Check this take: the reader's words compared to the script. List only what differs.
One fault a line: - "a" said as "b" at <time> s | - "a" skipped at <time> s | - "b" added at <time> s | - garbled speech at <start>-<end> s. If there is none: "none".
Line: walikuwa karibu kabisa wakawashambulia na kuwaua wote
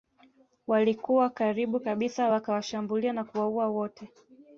none